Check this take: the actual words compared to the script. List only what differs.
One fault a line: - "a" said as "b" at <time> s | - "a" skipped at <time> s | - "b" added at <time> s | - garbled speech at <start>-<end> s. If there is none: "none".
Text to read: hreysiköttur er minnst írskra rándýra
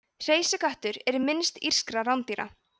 none